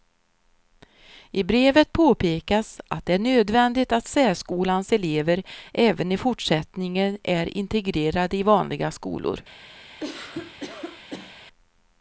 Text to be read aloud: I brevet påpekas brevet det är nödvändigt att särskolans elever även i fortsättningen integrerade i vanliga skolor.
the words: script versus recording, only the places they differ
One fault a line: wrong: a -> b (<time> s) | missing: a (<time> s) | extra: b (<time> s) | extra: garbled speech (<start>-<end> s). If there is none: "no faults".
wrong: brevet -> att (2.9 s)
extra: är (7.2 s)